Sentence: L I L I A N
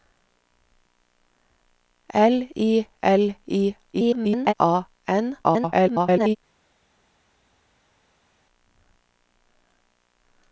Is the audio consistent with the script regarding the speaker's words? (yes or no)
no